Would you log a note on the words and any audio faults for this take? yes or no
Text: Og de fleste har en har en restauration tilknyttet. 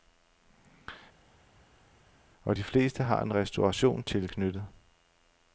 yes